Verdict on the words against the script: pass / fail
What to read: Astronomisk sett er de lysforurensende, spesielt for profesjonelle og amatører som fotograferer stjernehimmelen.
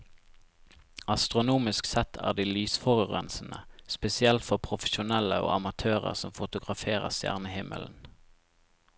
pass